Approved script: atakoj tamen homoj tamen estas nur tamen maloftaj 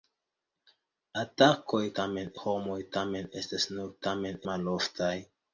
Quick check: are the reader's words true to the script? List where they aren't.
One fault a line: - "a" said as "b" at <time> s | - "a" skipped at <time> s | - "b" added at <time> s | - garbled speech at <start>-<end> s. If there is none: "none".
none